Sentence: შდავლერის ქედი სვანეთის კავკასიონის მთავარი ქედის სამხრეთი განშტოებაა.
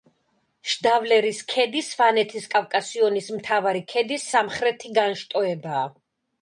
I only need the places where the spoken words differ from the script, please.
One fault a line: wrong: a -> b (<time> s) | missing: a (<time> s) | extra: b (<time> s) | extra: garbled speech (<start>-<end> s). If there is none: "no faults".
no faults